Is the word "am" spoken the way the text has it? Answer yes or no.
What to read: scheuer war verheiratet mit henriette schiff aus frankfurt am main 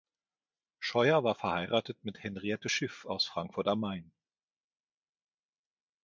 yes